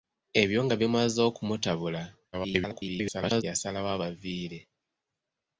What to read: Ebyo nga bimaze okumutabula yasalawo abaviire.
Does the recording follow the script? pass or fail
fail